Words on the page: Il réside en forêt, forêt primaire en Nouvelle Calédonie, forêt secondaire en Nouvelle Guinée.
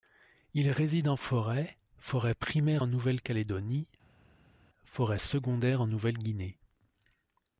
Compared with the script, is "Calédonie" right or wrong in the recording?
right